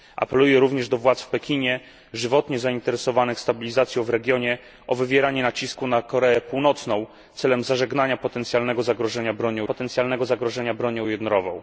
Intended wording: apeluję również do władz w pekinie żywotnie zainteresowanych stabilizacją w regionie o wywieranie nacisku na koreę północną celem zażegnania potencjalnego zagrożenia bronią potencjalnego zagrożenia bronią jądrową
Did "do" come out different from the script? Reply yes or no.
no